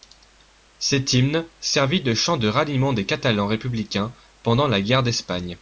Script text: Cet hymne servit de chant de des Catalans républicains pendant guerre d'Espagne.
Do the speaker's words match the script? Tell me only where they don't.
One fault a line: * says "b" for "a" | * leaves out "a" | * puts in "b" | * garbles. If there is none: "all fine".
* puts in "ralliement"
* puts in "la"